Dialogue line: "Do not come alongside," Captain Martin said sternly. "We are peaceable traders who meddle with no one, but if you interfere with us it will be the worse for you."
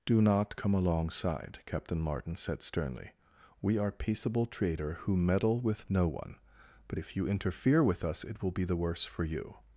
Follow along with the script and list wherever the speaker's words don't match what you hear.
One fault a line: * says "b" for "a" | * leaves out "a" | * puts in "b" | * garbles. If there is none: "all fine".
* says "trader" for "traders"